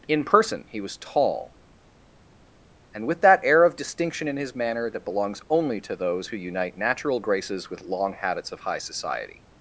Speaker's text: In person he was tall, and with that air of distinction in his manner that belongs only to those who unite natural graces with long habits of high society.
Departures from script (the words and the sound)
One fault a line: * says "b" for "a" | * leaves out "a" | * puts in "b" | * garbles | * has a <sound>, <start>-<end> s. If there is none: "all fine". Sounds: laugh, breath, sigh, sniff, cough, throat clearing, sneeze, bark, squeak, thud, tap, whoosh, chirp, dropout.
all fine